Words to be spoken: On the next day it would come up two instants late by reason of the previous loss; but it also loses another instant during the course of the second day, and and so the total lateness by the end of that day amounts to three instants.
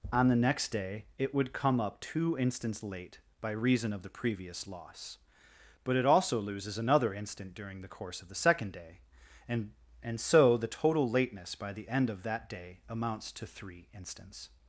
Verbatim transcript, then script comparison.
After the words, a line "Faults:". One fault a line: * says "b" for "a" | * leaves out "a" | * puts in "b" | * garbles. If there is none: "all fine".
On the next day it would come up two instants late by reason of the previous loss; but it also loses another instant during the course of the second day, and and so the total lateness by the end of that day amounts to three instants.
Faults:
all fine